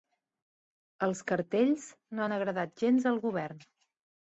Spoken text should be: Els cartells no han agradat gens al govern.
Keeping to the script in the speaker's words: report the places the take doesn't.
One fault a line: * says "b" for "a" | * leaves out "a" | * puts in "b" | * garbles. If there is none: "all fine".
all fine